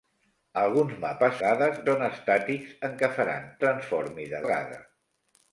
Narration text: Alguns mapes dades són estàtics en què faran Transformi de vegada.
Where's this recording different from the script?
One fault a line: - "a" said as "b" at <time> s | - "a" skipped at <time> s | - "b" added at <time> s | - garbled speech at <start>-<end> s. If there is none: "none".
none